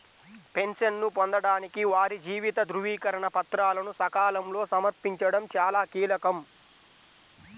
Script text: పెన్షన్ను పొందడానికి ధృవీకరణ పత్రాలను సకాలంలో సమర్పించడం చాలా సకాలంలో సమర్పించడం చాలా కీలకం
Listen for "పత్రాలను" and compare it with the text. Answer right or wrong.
right